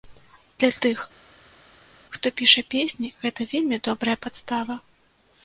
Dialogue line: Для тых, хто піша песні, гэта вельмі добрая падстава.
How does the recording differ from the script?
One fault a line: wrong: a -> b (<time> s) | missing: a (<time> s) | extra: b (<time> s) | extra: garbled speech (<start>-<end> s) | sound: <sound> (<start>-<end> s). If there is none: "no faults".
no faults